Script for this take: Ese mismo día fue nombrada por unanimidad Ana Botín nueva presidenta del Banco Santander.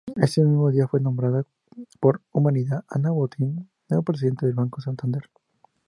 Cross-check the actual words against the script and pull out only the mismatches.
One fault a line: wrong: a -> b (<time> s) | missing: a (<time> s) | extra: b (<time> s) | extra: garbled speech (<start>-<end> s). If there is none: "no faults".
no faults